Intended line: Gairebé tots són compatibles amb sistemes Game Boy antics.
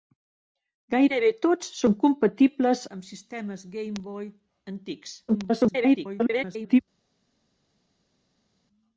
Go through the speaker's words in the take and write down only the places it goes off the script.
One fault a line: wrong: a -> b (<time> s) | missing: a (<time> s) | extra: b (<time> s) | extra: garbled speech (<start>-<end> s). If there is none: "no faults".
extra: garbled speech (5.3-6.8 s)